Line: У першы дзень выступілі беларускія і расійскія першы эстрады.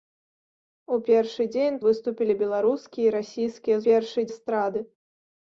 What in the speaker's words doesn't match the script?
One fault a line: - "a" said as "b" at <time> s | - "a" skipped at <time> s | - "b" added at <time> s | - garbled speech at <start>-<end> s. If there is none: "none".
none